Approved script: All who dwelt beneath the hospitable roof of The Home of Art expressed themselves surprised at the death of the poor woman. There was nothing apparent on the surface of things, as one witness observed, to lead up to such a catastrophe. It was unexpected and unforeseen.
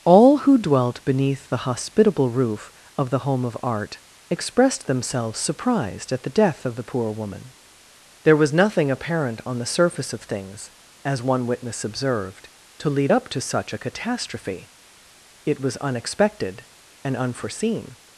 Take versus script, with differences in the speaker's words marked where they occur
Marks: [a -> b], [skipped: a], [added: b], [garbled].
All who dwelt beneath the hospitable roof of The Home of Art expressed themselves surprised at the death of the poor woman. There was nothing apparent on the surface of things, as one witness observed, to lead up to such a catastrophe. It was unexpected and unforeseen.